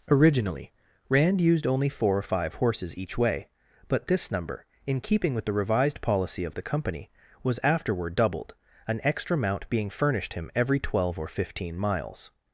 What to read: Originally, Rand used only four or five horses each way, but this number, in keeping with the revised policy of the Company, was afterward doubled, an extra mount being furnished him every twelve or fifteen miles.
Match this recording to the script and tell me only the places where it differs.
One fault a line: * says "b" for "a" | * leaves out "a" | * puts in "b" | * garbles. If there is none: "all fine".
all fine